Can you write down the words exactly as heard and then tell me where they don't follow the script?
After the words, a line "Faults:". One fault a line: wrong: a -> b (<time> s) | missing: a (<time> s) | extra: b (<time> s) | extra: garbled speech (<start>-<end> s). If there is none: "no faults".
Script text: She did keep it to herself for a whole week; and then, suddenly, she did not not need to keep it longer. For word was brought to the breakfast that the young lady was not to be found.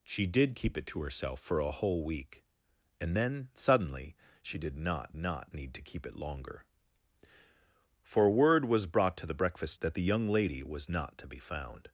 She did keep it to herself for a whole week; and then, suddenly, she did not not need to keep it longer. For word was brought to the breakfast that the young lady was not to be found.
Faults:
no faults